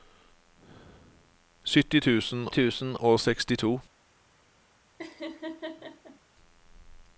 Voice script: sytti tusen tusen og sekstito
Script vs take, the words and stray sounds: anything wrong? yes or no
yes